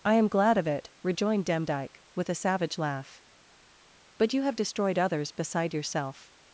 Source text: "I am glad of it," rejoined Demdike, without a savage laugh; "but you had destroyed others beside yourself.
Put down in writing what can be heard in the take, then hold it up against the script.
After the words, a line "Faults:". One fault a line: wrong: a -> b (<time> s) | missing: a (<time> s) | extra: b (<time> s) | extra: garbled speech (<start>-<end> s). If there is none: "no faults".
"I am glad of it," rejoined Demdike, with a savage laugh; "but you have destroyed others beside yourself.
Faults:
wrong: without -> with (2.1 s)
wrong: had -> have (4.4 s)